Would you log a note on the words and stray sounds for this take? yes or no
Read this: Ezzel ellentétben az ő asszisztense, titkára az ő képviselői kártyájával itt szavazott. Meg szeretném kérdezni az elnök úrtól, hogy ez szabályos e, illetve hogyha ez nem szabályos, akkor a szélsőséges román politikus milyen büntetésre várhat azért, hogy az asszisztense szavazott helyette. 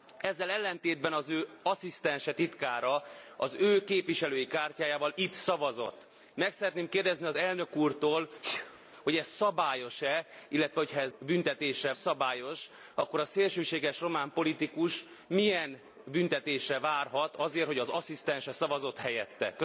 yes